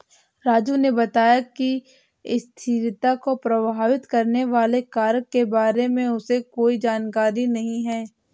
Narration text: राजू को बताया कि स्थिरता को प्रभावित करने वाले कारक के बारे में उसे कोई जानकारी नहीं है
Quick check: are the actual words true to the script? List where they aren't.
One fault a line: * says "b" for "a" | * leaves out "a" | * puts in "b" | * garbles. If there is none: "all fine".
* says "ने" for "को"